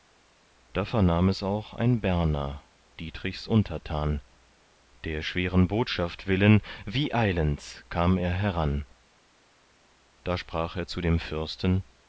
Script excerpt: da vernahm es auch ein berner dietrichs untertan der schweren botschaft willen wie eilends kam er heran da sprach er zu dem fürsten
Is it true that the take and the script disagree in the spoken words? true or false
false